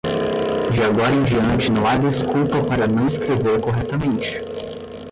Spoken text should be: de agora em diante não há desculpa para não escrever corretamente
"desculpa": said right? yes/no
yes